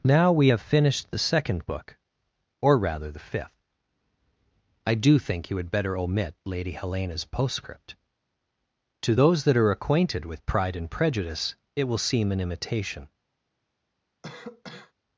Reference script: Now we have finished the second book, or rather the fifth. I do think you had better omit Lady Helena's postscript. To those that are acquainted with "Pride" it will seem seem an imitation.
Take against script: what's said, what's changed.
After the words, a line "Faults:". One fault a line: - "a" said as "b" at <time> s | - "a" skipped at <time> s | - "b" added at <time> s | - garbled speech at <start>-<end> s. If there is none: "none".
Now we have finished the second book, or rather the fifth. I do think you had better omit Lady Helena's postscript. To those that are acquainted with "Pride and Prejudice" it will seem an imitation.
Faults:
- "and Prejudice" added at 10.8 s
- "seem" skipped at 12.3 s